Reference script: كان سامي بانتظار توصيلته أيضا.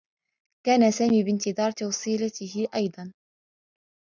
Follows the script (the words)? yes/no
yes